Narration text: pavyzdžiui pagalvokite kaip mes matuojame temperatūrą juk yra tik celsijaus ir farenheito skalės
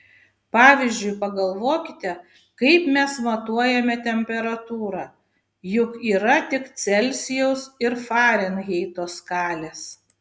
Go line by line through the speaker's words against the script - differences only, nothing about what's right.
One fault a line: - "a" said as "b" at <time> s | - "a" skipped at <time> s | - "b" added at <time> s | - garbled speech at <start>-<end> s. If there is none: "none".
none